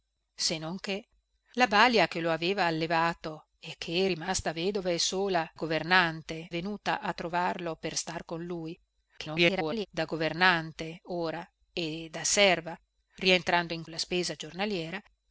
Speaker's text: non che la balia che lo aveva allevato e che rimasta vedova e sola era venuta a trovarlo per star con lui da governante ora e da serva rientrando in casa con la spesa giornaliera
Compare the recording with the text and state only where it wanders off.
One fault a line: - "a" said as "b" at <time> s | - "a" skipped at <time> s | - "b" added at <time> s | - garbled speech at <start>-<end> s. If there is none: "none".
- "era" said as "governante" at 5.5 s
- garbled speech at 9.2-9.9 s
- "casa con" skipped at 13.8 s